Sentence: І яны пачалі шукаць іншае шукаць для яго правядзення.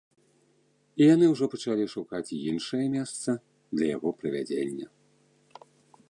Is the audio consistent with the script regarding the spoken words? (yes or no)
no